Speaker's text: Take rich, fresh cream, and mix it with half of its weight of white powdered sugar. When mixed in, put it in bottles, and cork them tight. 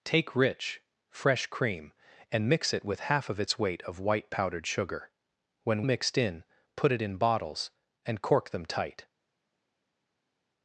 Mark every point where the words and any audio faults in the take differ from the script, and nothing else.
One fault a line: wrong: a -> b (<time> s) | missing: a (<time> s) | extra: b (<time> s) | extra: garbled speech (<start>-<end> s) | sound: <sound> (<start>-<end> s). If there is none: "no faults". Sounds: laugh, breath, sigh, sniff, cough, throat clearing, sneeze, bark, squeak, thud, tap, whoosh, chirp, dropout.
no faults